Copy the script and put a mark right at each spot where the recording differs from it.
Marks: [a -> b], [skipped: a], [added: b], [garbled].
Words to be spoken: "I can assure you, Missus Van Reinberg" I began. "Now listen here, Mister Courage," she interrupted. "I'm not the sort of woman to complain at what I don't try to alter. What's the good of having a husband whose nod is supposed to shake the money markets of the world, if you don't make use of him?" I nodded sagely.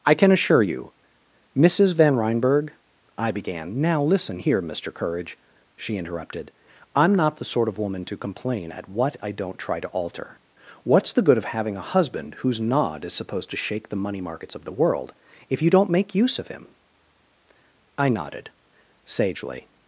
"I can assure you, Missus Van Reinberg" I began. "Now listen here, Mister Courage," she interrupted. "I'm not the sort of woman to complain at what I don't try to alter. What's the good of having a husband whose nod is supposed to shake the money markets of the world, if you don't make use of him?" I nodded sagely.